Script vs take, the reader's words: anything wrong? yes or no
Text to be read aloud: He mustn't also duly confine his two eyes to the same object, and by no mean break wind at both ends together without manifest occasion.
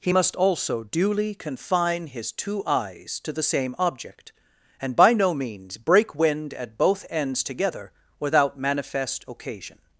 yes